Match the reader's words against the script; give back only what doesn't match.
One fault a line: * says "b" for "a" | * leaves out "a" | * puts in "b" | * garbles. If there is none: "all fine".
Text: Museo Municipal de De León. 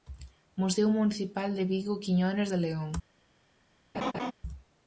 * puts in "Vigo Quiñones"